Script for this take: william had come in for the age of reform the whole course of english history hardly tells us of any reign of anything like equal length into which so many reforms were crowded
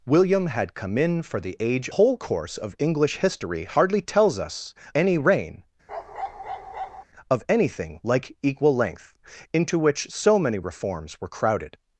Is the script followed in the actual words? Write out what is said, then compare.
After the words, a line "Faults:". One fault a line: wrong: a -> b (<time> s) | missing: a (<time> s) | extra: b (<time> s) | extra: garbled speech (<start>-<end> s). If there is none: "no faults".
william had come in for the age whole course of english history hardly tells us any reign of anything like equal length into which so many reforms were crowded
Faults:
missing: of reform the (1.9 s)
missing: of (4.7 s)